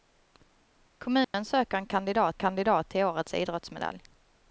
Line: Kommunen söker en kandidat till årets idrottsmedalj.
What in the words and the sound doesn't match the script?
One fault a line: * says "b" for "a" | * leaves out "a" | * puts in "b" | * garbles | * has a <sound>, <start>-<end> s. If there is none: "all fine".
* has a dropout, 1.2-1.3 s
* puts in "kandidat"